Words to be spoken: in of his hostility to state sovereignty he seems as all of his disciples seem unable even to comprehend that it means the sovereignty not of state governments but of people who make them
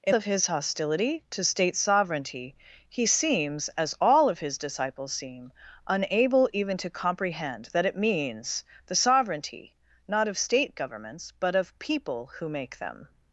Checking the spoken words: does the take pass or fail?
pass